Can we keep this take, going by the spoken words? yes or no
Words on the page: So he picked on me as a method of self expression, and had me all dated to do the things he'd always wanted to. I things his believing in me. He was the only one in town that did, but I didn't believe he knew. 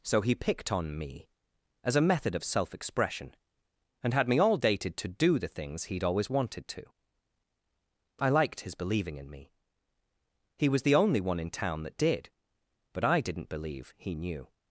no